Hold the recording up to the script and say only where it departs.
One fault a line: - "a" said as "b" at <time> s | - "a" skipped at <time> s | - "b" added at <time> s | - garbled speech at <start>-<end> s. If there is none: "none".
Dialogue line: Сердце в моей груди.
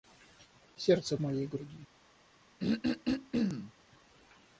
none